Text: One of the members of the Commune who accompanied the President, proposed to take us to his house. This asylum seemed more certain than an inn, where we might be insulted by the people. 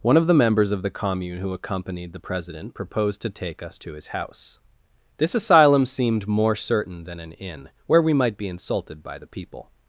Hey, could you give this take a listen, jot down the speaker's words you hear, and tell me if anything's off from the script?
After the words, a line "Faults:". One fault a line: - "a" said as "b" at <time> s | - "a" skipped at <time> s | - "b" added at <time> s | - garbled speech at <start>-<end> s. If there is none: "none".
One of the members of the Commune who accompanied the President, proposed to take us to his house. This asylum seemed more certain than an inn, where we might be insulted by the people.
Faults:
none